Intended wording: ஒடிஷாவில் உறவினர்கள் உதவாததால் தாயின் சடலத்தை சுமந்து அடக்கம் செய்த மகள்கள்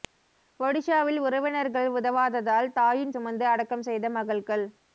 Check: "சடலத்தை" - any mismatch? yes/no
yes